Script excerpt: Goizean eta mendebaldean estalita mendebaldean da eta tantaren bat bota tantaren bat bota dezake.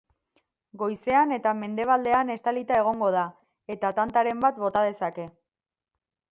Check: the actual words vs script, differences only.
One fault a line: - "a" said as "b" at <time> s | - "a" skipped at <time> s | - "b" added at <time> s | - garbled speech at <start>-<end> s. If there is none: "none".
- "mendebaldean" said as "egongo" at 2.8 s
- "tantaren bat bota" skipped at 4.9 s